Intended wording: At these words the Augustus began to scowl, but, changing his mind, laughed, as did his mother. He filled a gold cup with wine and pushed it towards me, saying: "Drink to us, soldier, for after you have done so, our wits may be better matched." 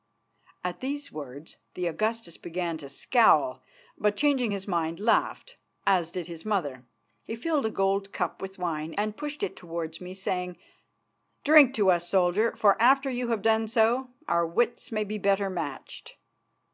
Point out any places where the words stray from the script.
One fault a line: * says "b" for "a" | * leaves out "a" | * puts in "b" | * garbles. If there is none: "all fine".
all fine